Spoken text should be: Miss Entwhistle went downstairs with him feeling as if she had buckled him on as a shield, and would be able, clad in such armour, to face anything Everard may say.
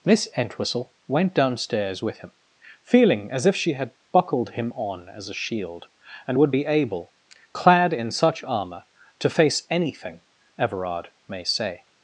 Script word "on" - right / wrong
right